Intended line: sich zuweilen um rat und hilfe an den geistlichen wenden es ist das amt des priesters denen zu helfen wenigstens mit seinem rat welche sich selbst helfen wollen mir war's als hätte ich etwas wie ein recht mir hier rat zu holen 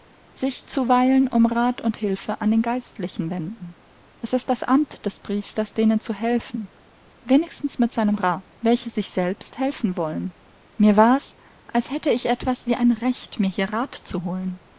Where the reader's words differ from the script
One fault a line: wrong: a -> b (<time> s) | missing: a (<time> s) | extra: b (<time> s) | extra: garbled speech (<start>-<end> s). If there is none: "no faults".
no faults